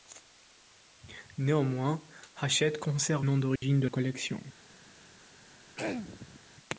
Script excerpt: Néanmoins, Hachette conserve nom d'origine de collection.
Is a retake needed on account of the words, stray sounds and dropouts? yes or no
yes